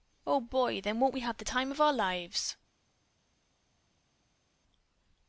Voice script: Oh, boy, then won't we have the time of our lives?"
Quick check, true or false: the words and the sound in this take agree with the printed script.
true